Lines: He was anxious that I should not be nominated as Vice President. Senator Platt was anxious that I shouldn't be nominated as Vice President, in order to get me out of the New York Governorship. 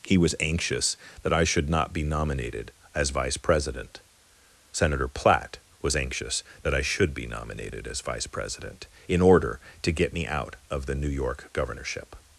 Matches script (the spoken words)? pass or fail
fail